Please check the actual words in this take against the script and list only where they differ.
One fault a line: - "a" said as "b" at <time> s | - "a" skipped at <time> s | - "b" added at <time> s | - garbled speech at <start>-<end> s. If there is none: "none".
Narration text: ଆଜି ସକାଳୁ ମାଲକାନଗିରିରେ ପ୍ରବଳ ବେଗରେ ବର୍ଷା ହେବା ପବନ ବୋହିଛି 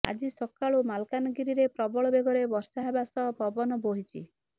- "ସହ" added at 3.1 s